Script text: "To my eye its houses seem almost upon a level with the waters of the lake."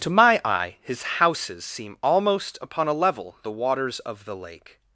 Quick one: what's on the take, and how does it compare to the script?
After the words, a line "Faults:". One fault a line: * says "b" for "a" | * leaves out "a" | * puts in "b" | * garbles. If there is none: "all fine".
"To my eye his houses seem almost upon a level the waters of the lake."
Faults:
* says "his" for "its"
* leaves out "with"